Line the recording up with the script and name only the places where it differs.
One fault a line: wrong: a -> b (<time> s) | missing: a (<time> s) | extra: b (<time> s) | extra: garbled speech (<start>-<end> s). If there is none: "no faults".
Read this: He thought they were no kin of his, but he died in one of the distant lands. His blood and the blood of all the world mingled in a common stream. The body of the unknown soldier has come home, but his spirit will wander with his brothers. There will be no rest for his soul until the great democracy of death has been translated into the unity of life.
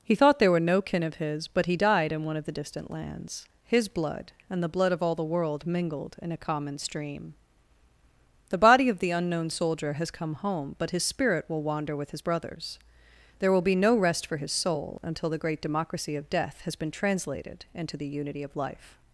wrong: they -> there (0.4 s)